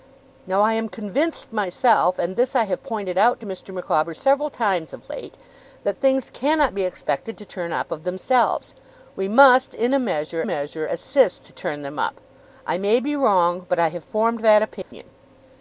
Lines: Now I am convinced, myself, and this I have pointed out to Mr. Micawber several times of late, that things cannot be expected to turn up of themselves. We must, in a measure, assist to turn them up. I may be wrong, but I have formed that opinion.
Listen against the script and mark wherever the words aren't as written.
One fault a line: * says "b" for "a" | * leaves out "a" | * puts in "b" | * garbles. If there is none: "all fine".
* puts in "measure"